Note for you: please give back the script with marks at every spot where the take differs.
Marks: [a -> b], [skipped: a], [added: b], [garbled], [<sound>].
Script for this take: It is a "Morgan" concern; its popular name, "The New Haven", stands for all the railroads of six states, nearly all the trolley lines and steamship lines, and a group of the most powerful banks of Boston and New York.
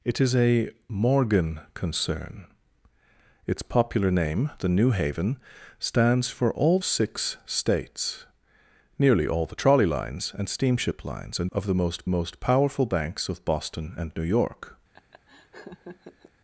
It is a "Morgan" concern; its popular name, "The New Haven", stands for all [skipped: the railroads of] six states, nearly all the trolley lines and steamship lines, and [skipped: a group] of the most [added: most] powerful banks of Boston and New York. [laugh]